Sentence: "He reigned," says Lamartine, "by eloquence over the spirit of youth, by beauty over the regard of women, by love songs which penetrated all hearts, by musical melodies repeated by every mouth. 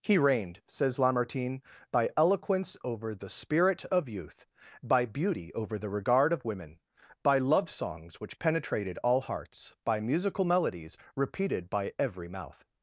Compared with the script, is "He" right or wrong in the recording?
right